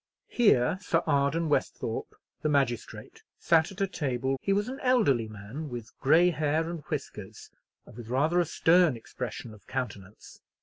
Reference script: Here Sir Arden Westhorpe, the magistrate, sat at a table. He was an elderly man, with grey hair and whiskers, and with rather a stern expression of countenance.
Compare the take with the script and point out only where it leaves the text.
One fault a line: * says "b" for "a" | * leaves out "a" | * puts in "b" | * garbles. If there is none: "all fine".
all fine